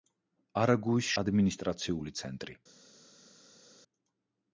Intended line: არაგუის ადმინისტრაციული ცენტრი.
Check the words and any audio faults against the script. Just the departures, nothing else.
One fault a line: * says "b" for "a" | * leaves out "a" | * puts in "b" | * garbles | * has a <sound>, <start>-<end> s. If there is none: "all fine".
all fine